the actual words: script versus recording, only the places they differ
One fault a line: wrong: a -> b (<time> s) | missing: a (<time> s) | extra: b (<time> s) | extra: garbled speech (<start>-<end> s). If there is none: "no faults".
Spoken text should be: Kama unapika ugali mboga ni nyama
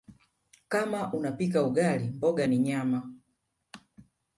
no faults